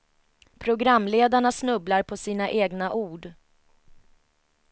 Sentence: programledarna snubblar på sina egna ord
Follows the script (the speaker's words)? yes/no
yes